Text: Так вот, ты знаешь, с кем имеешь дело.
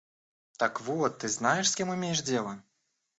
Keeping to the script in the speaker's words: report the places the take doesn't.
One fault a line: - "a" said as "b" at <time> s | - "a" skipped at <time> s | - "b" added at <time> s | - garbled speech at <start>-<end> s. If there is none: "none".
none